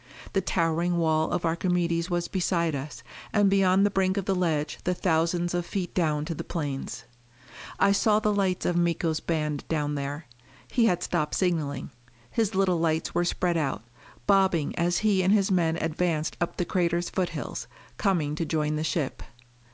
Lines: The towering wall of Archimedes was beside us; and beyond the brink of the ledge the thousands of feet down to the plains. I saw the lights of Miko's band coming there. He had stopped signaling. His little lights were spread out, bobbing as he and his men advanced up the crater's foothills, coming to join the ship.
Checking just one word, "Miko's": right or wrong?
right